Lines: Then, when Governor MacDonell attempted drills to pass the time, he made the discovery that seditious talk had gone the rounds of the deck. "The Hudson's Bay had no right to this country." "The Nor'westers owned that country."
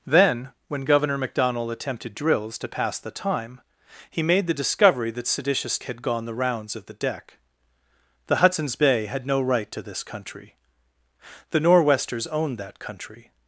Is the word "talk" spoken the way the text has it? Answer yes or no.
no